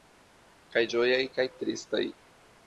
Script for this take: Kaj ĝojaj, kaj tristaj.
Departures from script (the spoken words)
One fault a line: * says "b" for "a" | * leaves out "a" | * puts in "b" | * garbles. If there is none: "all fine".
all fine